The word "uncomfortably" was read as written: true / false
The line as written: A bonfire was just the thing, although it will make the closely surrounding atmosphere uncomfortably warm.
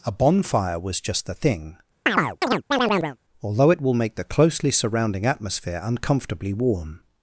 true